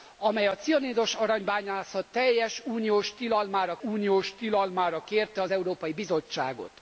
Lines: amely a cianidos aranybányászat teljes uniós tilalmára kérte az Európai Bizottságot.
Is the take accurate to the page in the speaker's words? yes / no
no